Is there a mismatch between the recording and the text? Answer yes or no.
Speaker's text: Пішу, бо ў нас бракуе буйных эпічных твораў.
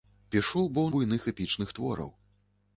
yes